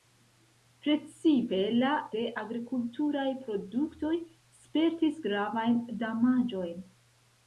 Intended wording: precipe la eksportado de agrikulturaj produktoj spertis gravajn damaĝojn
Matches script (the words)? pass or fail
fail